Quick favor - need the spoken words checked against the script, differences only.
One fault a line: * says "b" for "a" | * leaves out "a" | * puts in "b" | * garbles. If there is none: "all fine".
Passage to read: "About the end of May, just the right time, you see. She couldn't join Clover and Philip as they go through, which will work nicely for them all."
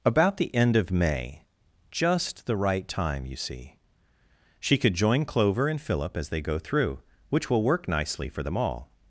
* says "could" for "couldn't"